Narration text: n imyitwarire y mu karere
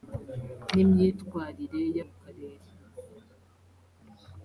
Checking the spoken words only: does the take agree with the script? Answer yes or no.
yes